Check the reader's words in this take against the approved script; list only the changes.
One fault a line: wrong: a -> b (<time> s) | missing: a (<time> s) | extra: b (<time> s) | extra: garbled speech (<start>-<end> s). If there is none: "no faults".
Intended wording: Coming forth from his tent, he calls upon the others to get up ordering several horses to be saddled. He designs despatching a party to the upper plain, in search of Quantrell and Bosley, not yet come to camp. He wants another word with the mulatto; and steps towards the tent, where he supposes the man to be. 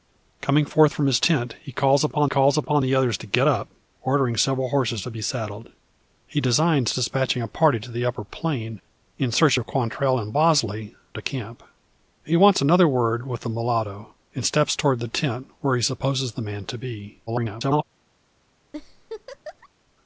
extra: calls upon (2.2 s)
missing: not yet come (10.9 s)
extra: garbled speech (17.3-17.8 s)